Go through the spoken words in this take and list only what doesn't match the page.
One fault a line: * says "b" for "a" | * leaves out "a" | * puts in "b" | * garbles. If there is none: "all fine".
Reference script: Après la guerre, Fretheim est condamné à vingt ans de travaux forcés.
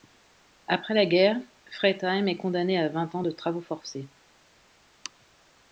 all fine